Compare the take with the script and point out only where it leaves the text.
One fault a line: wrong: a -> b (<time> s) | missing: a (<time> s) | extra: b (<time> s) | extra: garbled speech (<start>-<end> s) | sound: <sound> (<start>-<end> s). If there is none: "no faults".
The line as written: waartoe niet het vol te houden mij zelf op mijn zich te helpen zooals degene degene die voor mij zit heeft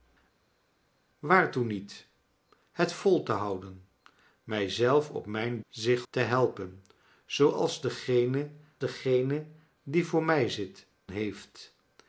no faults